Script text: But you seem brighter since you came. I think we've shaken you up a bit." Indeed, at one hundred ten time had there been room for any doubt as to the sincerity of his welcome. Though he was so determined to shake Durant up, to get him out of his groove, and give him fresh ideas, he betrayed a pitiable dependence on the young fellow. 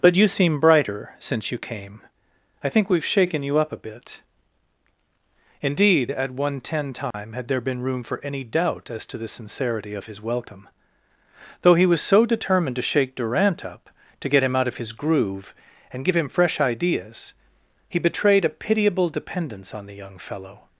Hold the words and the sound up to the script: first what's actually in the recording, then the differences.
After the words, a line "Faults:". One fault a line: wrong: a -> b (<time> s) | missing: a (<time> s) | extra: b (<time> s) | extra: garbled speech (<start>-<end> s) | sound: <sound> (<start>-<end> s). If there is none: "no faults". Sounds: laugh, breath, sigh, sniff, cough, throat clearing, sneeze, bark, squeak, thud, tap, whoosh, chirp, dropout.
But you seem brighter since you came. I think we've shaken you up a bit." Indeed, at one ten time had there been room for any doubt as to the sincerity of his welcome. Though he was so determined to shake Durant up, to get him out of his groove, and give him fresh ideas, he betrayed a pitiable dependence on the young fellow.
Faults:
missing: hundred (6.6 s)
sound: dropout (7.1-7.1 s)